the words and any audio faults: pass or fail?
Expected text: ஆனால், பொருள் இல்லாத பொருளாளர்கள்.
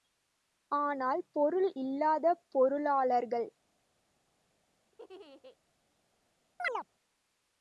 fail